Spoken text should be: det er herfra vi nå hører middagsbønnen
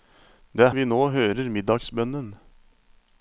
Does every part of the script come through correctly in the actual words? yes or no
no